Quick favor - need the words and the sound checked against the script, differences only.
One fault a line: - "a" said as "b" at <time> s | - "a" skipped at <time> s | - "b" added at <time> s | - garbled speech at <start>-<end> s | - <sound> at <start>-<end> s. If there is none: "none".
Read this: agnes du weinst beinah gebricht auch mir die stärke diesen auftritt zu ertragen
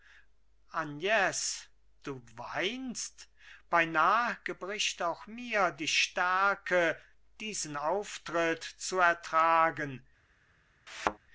- thud at 10.9-11.2 s